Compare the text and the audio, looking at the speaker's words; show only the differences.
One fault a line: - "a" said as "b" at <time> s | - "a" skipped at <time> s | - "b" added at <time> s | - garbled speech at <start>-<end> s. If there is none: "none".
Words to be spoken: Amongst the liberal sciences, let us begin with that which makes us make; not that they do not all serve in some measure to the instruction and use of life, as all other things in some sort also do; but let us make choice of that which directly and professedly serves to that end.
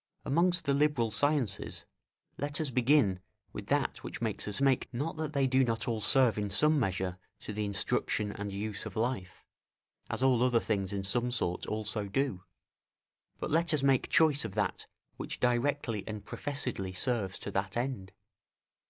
none